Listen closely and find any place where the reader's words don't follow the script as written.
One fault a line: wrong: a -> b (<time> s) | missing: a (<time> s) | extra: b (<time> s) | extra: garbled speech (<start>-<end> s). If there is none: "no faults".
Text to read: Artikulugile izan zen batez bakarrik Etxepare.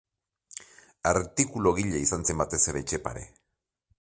wrong: bakarrik -> ere (2.7 s)